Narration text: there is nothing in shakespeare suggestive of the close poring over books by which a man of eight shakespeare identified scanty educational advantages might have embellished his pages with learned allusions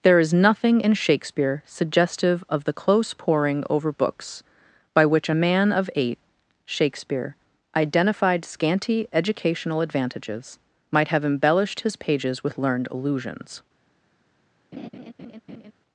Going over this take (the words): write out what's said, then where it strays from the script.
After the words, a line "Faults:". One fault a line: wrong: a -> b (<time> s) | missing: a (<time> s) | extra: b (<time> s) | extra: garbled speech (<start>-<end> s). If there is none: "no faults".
there is nothing in shakespeare suggestive of the close poring over books by which a man of eight shakespeare identified scanty educational advantages might have embellished his pages with learned allusions
Faults:
no faults